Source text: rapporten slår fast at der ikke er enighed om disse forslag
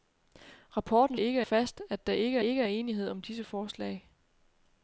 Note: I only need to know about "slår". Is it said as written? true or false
false